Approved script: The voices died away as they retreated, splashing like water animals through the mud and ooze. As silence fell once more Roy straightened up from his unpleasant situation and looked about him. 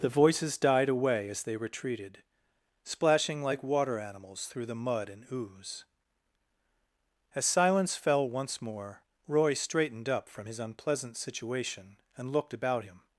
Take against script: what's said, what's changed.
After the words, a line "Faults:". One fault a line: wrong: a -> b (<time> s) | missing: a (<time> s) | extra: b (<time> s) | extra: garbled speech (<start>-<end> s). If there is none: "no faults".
The voices died away as they retreated, splashing like water animals through the mud and ooze. As silence fell once more Roy straightened up from his unpleasant situation and looked about him.
Faults:
no faults